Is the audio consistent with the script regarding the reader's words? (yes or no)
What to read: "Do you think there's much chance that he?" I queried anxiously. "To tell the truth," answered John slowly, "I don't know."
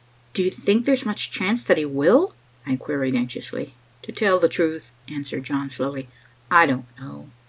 no